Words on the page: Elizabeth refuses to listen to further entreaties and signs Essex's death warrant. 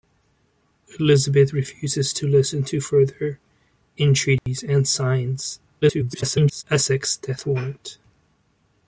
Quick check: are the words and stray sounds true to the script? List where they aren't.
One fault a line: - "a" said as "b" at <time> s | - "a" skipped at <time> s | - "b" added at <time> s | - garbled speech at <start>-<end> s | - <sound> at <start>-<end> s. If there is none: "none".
- dropout at 4.4-4.5 s
- garbled speech at 5.8-6.6 s